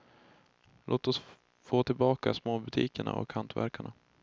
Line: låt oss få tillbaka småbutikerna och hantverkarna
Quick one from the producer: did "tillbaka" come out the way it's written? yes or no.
yes